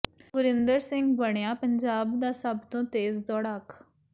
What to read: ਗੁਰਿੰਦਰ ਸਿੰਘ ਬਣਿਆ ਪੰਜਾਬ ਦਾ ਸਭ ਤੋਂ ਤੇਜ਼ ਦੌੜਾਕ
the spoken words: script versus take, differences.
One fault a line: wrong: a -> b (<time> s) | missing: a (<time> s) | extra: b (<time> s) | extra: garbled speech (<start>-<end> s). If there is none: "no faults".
no faults